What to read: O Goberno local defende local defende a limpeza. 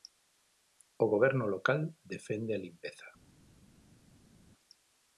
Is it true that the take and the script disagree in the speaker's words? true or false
true